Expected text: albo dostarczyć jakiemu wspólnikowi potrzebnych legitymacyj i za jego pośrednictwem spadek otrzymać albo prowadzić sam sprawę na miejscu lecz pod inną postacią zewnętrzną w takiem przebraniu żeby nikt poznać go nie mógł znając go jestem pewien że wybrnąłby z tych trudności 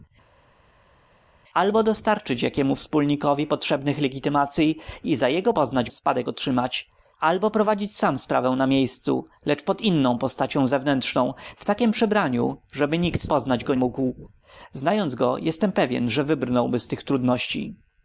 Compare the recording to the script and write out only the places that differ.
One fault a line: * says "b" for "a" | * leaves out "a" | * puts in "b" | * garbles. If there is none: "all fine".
* says "poznać" for "pośrednictwem"
* leaves out "nie"